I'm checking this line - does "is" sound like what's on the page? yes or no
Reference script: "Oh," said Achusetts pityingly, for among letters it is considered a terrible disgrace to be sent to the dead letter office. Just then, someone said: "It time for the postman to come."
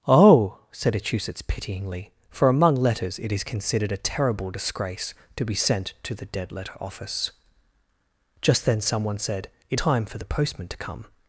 yes